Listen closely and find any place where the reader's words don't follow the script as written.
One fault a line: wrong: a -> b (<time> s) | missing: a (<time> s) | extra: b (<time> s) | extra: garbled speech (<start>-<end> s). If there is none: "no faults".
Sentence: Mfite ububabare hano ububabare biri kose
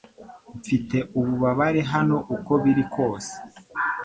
wrong: ububabare -> uko (2.4 s)